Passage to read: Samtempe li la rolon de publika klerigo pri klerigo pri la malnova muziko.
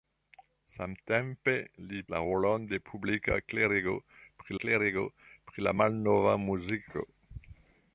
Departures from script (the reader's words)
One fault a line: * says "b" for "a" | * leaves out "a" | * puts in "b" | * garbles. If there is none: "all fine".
all fine